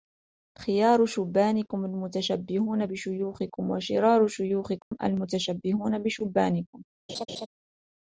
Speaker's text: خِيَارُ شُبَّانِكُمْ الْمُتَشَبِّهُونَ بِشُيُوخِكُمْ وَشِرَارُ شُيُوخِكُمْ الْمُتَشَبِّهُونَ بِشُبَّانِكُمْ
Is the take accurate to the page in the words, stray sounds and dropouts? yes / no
no